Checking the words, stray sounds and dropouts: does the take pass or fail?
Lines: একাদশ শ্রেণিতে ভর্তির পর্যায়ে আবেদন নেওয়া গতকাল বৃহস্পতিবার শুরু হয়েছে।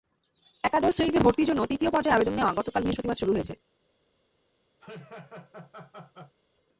fail